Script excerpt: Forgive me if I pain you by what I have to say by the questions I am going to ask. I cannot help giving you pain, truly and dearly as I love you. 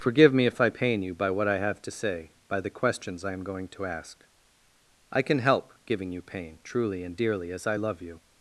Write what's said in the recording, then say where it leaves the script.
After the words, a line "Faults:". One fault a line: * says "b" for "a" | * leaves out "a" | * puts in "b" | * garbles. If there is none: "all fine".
Forgive me if I pain you by what I have to say by the questions I am going to ask. I can help giving you pain, truly and dearly as I love you.
Faults:
* says "can" for "cannot"